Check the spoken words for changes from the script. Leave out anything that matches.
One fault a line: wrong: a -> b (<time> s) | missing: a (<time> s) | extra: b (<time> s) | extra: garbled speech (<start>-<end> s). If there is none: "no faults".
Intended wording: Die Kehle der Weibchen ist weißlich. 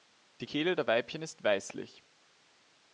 no faults